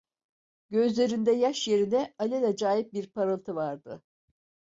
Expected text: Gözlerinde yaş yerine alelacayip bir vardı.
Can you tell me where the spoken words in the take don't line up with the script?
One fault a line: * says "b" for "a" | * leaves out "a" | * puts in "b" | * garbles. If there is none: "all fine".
* puts in "parıltı"